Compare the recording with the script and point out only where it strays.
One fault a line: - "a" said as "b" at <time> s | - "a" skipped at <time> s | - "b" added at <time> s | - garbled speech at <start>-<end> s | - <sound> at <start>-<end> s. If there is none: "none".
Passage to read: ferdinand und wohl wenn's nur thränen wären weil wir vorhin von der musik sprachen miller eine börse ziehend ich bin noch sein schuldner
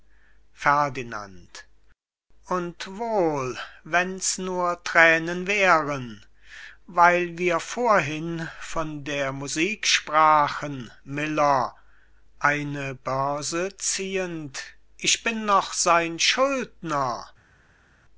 none